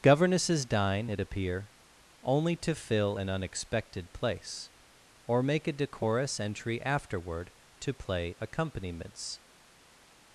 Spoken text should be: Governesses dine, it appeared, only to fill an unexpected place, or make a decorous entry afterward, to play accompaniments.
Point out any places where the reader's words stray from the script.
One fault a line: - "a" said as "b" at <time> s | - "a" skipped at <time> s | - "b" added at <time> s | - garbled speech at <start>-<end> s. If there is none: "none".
- "appeared" said as "appear" at 1.2 s